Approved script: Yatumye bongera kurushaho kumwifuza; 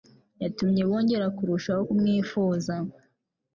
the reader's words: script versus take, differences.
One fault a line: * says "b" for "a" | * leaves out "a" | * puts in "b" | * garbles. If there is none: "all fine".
all fine